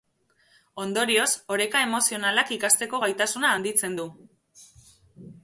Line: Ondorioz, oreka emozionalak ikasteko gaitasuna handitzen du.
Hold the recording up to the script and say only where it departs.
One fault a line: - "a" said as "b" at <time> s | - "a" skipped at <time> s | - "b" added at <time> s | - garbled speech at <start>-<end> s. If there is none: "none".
none